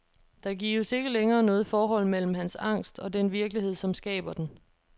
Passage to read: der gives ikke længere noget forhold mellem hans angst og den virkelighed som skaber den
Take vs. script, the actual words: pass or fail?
pass